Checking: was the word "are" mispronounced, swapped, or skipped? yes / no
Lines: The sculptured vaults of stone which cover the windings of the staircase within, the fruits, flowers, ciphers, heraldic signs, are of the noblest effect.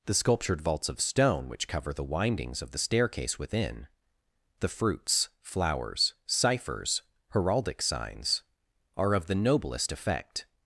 no